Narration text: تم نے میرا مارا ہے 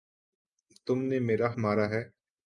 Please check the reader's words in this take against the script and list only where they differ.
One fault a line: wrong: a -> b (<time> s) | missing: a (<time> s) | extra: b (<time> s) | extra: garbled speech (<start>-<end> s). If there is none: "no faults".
no faults